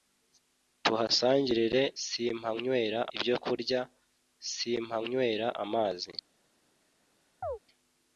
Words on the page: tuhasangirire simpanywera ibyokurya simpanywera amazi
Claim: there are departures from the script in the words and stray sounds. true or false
true